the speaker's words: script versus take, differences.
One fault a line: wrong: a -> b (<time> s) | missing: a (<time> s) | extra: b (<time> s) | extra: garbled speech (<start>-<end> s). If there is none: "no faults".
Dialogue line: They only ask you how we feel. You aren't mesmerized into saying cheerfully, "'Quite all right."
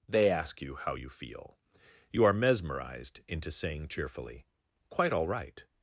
missing: only (0.3 s)
wrong: we -> you (0.9 s)
wrong: aren't -> are (2.2 s)